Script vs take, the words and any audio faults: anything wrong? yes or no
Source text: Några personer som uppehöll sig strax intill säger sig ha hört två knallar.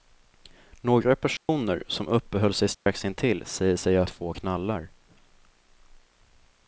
yes